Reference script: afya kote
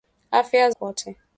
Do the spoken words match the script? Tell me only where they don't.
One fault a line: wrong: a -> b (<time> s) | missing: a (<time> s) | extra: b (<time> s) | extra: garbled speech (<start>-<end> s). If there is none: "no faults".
no faults